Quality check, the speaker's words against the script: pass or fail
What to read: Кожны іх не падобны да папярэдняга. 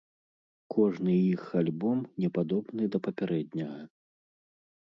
fail